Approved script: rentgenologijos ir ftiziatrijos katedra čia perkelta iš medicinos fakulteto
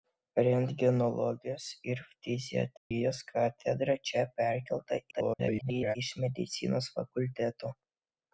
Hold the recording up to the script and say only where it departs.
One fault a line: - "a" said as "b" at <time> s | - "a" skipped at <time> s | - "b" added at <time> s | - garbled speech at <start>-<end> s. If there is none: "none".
- garbled speech at 5.1-6.0 s